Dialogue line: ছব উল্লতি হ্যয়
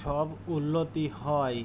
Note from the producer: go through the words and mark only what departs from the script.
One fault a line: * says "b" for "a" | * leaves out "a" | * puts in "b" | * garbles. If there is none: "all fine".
all fine